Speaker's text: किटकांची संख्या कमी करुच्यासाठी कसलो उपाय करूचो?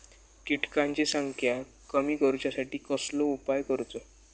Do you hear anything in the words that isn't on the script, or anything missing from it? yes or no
no